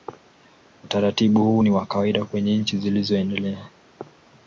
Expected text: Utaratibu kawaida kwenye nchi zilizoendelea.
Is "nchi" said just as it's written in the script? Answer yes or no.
yes